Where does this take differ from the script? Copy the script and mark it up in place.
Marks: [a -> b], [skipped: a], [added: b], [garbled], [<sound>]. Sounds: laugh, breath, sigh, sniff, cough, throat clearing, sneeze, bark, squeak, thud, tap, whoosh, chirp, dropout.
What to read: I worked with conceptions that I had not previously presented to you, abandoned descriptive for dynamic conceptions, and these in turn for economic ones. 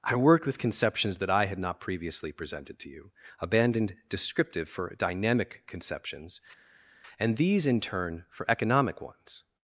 I worked with conceptions that I had not previously presented to you, abandoned descriptive for dynamic conceptions, and these in turn for economic ones.